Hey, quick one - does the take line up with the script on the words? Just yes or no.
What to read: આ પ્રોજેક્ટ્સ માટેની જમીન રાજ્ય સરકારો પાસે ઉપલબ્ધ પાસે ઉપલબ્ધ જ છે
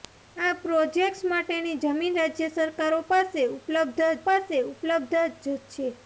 yes